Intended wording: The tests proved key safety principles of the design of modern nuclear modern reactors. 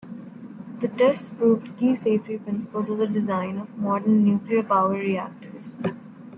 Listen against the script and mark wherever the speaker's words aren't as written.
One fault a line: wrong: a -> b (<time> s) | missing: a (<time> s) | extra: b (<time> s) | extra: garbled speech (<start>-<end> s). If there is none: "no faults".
wrong: modern -> power (4.6 s)